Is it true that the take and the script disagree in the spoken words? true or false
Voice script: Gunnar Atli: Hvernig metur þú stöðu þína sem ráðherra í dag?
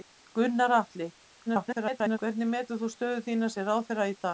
true